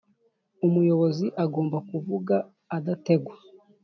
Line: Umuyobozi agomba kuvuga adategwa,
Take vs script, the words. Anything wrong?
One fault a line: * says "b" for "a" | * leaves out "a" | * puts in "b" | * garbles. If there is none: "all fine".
all fine